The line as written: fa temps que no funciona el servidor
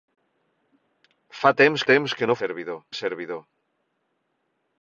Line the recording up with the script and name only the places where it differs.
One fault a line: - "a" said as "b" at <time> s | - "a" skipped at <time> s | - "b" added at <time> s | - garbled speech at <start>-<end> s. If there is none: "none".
- "temps" added at 1.9 s
- "funciona" said as "servidor" at 2.4 s